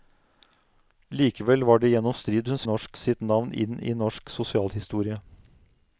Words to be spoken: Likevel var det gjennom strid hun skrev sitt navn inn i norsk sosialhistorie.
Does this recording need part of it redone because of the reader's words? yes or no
yes